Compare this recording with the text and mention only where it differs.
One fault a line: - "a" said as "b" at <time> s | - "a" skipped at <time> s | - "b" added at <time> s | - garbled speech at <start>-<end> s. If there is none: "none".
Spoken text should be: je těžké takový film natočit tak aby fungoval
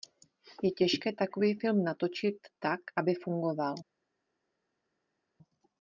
none